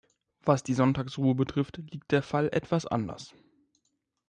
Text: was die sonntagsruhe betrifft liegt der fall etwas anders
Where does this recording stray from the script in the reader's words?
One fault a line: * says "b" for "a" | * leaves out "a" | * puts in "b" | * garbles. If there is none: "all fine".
all fine